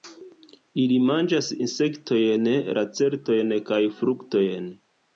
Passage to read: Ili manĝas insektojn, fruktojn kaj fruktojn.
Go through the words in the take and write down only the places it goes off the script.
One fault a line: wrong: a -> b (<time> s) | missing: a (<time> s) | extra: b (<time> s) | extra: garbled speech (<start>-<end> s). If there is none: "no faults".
wrong: fruktojn -> lacertojn (2.8 s)